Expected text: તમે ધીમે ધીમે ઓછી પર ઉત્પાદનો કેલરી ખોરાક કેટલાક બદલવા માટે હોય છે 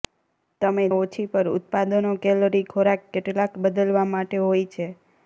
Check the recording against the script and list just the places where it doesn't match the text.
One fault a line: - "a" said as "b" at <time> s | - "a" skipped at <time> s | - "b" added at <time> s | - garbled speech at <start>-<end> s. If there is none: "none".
- "ધીમે ધીમે" skipped at 0.8 s